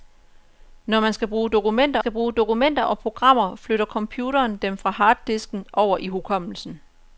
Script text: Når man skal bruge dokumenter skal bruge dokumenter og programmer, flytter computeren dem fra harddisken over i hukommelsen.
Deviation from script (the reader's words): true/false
false